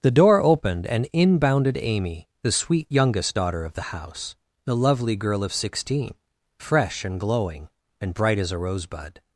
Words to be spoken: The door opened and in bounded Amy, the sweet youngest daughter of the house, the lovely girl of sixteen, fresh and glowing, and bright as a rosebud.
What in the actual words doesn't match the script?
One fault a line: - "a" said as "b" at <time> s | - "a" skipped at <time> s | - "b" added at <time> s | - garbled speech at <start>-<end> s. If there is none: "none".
none